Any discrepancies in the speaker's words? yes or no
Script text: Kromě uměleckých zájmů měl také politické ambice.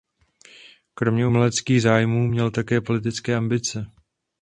no